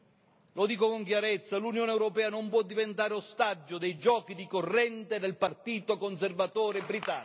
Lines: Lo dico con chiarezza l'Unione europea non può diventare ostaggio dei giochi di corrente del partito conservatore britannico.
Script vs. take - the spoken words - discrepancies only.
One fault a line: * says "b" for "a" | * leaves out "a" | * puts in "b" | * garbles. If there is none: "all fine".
all fine